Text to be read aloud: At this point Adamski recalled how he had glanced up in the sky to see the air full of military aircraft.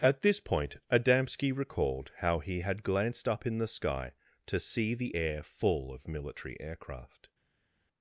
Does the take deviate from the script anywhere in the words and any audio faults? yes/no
no